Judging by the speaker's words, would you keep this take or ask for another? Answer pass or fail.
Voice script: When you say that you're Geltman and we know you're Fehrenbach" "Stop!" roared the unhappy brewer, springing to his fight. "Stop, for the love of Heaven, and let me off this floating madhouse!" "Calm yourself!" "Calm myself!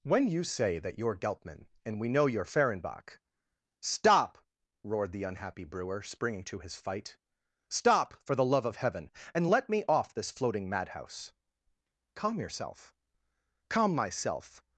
pass